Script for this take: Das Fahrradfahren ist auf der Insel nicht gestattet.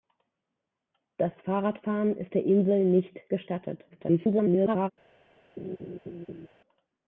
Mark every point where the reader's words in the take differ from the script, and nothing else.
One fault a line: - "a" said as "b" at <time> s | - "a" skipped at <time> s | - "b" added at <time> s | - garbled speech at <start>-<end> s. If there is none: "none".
- "auf" skipped at 2.4 s
- garbled speech at 3.9-4.9 s